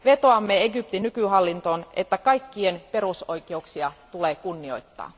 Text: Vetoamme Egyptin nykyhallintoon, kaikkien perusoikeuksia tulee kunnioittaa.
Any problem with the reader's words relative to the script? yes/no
yes